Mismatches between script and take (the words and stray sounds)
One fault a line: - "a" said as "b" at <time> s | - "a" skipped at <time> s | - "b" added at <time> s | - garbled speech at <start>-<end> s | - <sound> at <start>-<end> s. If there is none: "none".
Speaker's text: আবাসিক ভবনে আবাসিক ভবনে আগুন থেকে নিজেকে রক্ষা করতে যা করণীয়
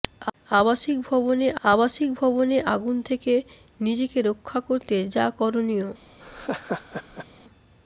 - laugh at 6.2-7.3 s